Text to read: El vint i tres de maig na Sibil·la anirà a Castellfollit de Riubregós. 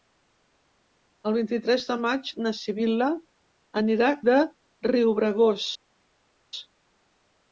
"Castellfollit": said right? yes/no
no